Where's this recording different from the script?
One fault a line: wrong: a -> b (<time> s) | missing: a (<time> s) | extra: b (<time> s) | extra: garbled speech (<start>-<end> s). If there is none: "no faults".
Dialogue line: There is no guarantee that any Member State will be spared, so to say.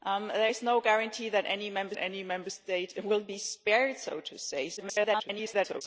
extra: any Member (2.0 s)
extra: garbled speech (4.8-5.8 s)